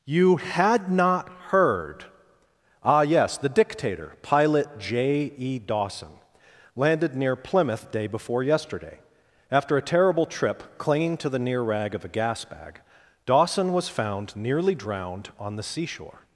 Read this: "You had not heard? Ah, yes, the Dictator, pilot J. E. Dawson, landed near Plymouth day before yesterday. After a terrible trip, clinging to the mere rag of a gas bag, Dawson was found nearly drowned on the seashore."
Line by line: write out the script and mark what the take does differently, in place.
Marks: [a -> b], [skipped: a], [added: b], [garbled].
"You had not heard? Ah, yes, the Dictator, pilot J. E. Dawson, landed near Plymouth day before yesterday. After a terrible trip, clinging to the [mere -> near] rag of a gas bag, Dawson was found nearly drowned on the seashore."